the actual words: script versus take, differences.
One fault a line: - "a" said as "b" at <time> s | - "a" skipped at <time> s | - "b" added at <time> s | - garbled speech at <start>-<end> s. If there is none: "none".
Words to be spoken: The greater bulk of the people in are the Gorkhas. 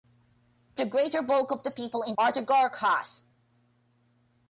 none